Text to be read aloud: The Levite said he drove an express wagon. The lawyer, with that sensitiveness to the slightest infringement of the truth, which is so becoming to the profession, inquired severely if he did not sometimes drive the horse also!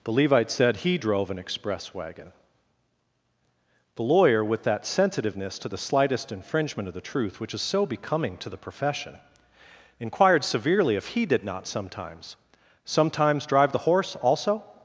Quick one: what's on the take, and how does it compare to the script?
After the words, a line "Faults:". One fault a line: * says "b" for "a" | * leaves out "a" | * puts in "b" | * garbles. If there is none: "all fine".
The Levite said he drove an express wagon. The lawyer, with that sensitiveness to the slightest infringement of the truth, which is so becoming to the profession, inquired severely if he did not sometimes sometimes drive the horse also!
Faults:
* puts in "sometimes"